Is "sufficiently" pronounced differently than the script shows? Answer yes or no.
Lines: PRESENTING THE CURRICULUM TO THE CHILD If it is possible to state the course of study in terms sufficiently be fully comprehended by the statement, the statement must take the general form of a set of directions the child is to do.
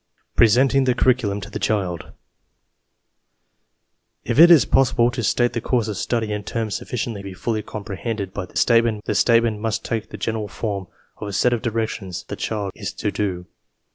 no